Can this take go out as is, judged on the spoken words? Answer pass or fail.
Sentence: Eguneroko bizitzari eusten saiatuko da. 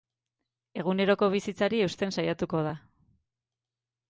pass